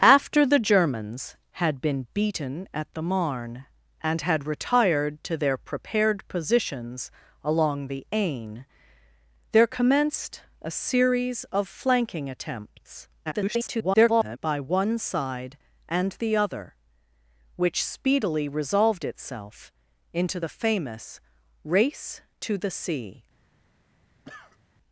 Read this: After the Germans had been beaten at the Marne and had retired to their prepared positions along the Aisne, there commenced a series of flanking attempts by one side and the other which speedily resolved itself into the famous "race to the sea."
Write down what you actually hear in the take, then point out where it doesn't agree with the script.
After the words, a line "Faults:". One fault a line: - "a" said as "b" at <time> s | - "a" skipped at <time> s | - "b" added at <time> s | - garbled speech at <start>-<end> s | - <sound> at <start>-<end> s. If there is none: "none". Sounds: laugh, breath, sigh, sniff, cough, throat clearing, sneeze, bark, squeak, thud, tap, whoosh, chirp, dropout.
After the Germans had been beaten at the Marne and had retired to their prepared positions along the Aisne, there commenced a series of flanking attempts [garbled] by one side and the other which speedily resolved itself into the famous "race to the sea."
Faults:
- garbled speech at 13.3-14.4 s
- cough at 24.2-24.6 s